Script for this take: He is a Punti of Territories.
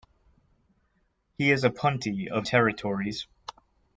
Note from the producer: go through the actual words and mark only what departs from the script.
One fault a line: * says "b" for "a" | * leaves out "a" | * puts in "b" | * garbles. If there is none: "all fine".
all fine